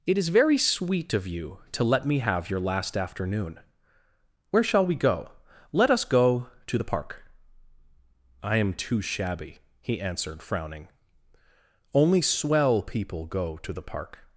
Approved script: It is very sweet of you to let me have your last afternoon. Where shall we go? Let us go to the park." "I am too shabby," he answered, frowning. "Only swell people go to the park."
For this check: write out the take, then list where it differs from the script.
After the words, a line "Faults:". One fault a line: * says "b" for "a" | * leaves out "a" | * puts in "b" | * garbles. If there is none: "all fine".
It is very sweet of you to let me have your last afternoon. Where shall we go? Let us go to the park." "I am too shabby," he answered, frowning. "Only swell people go to the park."
Faults:
all fine